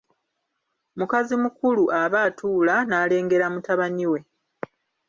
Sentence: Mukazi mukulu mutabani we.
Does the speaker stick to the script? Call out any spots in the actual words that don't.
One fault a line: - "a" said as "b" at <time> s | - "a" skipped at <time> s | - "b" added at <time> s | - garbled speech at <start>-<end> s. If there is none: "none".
- "aba atuula n'alengera" added at 2.0 s